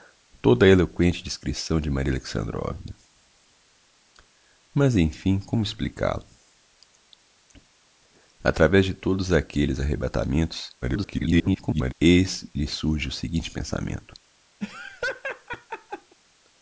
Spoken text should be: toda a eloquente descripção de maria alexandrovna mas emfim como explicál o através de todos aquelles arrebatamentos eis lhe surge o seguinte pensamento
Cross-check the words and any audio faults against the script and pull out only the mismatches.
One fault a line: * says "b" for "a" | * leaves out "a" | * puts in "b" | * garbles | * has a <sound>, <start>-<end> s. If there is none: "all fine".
* garbles
* has a laugh, 14.6-16.2 s